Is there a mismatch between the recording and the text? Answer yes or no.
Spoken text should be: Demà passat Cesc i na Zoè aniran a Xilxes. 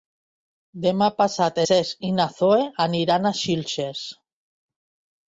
no